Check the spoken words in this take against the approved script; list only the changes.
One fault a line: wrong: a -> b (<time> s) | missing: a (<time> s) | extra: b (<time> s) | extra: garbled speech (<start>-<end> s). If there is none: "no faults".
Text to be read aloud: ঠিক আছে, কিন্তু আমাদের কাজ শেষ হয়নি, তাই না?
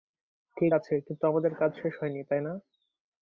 no faults